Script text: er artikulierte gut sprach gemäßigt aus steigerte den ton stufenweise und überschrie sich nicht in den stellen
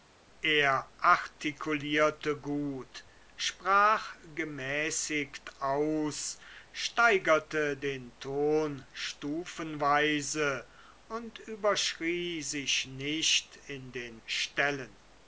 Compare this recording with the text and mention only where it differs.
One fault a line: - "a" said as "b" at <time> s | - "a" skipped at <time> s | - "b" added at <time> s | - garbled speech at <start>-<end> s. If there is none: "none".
none